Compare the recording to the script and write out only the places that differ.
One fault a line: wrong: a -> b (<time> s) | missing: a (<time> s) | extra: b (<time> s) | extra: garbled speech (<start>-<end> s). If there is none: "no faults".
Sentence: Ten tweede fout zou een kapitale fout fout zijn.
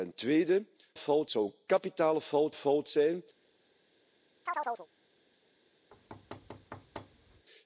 no faults